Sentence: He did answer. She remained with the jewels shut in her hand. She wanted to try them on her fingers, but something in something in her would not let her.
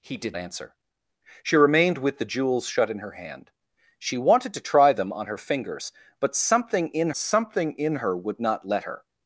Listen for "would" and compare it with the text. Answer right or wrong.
right